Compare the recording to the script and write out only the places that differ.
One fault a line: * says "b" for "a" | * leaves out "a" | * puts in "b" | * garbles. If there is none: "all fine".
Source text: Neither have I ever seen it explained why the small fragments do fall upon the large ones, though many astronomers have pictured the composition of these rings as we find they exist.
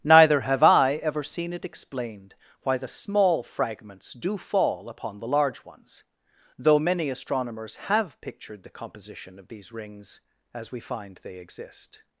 all fine